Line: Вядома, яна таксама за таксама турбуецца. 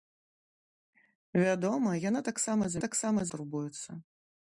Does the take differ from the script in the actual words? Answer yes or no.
no